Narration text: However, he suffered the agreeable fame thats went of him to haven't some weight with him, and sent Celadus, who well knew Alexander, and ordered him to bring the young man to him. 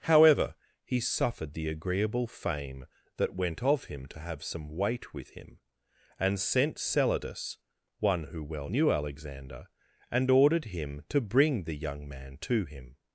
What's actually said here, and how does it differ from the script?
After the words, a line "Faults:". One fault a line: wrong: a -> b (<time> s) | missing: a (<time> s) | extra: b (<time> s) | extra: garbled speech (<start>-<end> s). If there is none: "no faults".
However, he suffered the agreeable fame that went of him to have some weight with him, and sent Celadus, one who well knew Alexander, and ordered him to bring the young man to him.
Faults:
wrong: thats -> that (3.2 s)
wrong: haven't -> have (4.2 s)
extra: one (8.0 s)